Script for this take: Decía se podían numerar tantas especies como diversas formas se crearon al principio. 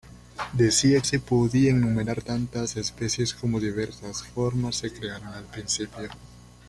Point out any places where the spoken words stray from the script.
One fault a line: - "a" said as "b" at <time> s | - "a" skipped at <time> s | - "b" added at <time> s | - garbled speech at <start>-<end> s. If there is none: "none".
none